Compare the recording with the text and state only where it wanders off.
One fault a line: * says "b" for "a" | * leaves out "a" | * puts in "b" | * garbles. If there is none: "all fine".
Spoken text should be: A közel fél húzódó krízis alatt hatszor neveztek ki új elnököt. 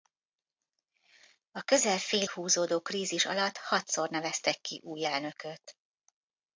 all fine